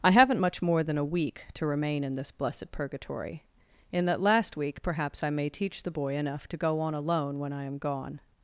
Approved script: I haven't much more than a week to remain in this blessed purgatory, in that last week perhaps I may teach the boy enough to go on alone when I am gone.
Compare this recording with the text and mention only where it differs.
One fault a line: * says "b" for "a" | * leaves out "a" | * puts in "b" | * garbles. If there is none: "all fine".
all fine